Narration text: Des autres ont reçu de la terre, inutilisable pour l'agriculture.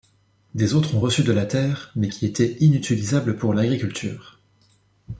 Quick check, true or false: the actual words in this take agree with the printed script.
false